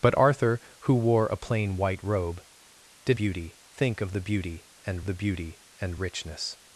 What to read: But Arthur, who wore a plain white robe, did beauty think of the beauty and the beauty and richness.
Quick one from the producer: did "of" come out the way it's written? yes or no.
yes